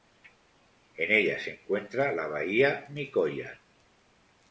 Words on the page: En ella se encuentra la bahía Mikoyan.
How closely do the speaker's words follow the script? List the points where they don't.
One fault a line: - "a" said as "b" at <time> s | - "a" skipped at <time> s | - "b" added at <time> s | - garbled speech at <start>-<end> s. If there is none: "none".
none